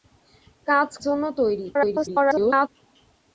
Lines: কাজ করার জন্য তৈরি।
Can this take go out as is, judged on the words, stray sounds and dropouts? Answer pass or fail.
fail